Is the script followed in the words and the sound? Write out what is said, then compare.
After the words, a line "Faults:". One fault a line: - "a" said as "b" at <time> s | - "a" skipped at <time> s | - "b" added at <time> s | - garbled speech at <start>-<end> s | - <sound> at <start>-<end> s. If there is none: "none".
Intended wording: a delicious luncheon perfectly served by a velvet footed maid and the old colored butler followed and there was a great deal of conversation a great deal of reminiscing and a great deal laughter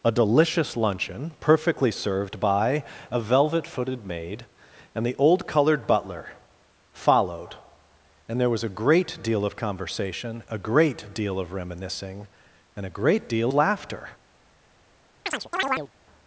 a delicious luncheon perfectly served by a velvet footed maid and the old colored butler followed and there was a great deal of conversation a great deal of reminiscing and a great deal laughter
Faults:
- chirp at 15.3-15.9 s